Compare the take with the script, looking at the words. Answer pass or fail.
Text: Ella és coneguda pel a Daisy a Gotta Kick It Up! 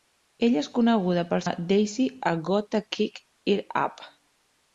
pass